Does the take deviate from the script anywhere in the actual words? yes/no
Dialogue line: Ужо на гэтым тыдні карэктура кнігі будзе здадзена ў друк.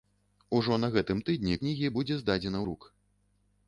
yes